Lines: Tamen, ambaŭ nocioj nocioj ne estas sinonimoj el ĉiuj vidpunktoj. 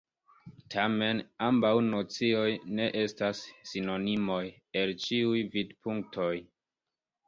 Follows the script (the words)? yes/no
no